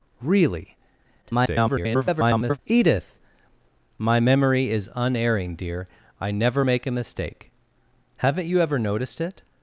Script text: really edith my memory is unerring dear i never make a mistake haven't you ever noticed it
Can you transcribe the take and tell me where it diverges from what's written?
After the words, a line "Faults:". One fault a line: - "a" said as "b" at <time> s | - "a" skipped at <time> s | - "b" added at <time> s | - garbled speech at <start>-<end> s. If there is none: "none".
really [garbled] edith my memory is unerring dear i never make a mistake haven't you ever noticed it
Faults:
- garbled speech at 1.2-2.6 s